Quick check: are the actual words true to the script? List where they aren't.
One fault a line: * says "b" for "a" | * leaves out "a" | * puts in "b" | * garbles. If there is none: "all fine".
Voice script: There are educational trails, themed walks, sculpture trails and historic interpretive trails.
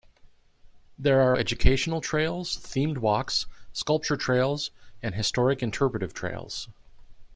all fine